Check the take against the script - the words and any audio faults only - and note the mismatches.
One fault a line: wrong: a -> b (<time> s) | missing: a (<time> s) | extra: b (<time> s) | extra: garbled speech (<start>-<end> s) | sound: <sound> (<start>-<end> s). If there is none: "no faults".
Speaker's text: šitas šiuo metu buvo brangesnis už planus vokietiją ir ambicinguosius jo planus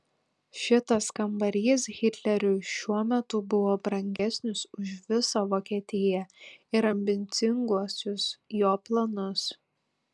extra: kambarys hitleriui (1.2 s)
sound: dropout (4.2-4.2 s)
wrong: planus -> visą (5.1 s)